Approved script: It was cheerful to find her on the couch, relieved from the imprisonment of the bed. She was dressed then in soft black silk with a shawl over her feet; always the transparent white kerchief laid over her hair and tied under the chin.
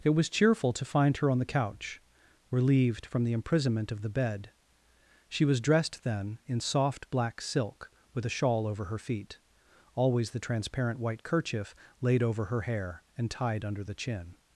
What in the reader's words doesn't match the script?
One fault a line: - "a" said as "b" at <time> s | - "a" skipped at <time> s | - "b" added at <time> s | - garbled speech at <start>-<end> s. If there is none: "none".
none